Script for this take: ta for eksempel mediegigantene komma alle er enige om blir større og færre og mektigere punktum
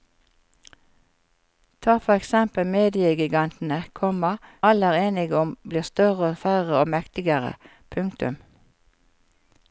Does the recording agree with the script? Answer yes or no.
yes